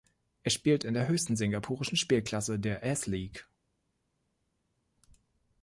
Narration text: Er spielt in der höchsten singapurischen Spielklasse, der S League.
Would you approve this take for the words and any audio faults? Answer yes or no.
yes